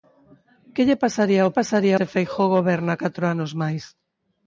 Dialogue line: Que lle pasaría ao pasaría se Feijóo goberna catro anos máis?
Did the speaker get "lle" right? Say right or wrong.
right